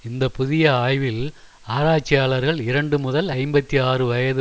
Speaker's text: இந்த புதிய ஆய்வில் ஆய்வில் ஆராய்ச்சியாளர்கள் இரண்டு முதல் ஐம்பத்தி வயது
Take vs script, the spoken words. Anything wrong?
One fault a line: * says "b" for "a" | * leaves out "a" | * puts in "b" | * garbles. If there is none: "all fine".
* leaves out "ஆய்வில்"
* puts in "ஆறு"